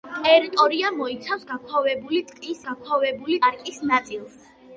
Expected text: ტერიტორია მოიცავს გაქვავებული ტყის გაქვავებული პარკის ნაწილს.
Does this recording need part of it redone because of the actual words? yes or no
no